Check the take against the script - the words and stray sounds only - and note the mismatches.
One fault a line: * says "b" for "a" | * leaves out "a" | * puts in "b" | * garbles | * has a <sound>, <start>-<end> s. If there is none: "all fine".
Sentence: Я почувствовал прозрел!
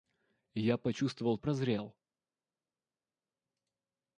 all fine